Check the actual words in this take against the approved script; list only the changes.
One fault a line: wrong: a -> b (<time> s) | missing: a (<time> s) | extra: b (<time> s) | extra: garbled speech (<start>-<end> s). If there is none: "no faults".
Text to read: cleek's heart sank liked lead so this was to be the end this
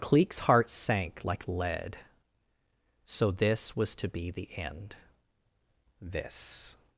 wrong: liked -> like (1.2 s)